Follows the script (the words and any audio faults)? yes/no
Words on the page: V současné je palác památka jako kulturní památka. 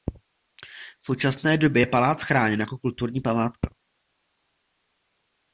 no